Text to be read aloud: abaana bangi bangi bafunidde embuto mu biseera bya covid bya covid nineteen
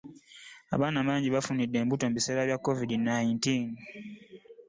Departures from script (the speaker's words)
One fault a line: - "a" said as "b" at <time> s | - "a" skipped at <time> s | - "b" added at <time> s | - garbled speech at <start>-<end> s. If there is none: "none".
- "bangi" skipped at 1.3 s
- "bya covid" skipped at 2.9 s